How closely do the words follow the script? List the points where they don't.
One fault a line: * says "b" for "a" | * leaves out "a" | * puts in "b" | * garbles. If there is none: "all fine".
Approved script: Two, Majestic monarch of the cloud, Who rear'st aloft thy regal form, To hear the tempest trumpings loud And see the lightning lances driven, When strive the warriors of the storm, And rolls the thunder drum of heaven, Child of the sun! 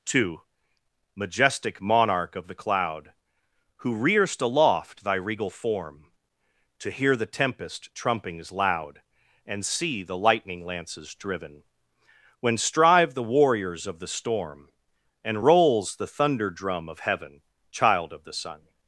all fine